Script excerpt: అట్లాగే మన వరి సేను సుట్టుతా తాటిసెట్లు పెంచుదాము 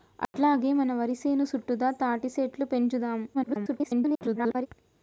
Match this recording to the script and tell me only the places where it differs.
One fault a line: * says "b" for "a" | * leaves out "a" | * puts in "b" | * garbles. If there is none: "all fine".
* garbles